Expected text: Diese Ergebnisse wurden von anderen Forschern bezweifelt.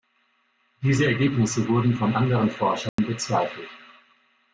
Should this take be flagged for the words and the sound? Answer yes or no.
yes